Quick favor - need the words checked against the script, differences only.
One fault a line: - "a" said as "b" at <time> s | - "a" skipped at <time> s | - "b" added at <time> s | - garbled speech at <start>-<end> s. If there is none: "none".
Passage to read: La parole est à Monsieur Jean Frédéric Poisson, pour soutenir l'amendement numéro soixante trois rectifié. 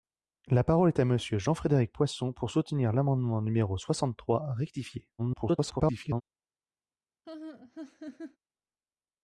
- garbled speech at 5.2-6.2 s